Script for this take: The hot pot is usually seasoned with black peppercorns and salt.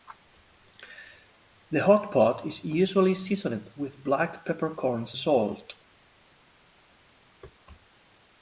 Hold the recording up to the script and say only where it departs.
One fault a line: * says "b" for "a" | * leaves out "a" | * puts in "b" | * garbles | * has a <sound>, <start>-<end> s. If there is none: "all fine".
* leaves out "and"